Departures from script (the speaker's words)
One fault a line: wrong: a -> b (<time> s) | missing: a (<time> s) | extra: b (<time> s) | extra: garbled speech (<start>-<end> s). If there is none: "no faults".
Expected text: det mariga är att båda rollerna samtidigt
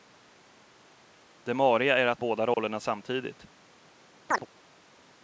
no faults